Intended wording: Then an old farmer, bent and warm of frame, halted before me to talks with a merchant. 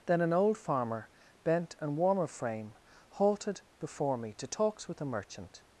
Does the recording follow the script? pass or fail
pass